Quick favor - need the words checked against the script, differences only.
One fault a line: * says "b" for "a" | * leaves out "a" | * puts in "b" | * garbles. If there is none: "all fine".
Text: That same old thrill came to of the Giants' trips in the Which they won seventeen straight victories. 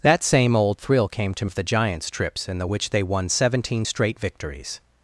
all fine